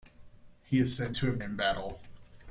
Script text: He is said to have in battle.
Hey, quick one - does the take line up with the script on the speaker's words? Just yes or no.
yes